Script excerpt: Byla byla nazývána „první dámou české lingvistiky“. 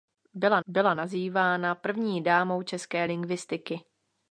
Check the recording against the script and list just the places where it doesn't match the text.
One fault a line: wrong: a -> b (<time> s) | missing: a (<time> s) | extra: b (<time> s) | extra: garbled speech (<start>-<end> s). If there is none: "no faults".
no faults